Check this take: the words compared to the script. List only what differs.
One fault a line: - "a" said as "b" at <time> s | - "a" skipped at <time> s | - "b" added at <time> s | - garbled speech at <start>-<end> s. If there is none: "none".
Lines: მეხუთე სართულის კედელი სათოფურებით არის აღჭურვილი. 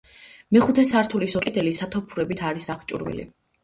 none